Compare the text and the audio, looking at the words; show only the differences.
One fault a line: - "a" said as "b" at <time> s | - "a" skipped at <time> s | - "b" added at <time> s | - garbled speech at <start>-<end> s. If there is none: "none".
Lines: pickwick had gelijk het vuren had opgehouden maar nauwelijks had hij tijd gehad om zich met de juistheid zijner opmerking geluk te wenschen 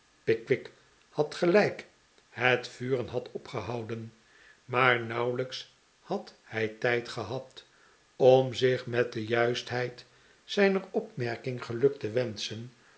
none